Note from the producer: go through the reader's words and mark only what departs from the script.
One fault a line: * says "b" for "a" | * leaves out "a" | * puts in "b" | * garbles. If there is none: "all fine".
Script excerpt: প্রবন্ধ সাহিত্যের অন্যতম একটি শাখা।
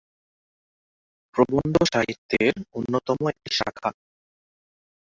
all fine